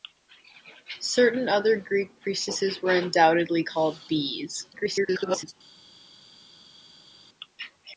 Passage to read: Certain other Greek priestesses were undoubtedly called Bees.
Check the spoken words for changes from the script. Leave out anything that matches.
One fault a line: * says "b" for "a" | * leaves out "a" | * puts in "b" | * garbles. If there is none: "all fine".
* garbles